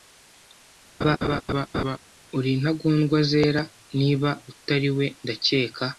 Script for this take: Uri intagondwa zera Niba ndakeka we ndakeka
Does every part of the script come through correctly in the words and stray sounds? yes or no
no